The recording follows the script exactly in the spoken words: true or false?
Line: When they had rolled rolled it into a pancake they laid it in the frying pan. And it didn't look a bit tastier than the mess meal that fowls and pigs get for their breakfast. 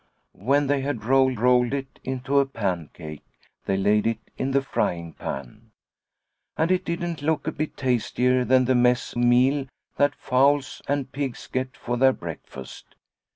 true